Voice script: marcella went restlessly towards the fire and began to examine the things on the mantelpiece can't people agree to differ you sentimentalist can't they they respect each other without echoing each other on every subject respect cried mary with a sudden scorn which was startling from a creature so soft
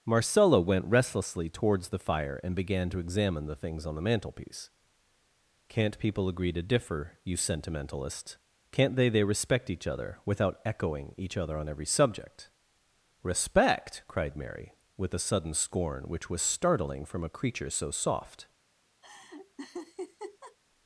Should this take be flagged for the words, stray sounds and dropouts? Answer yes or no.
yes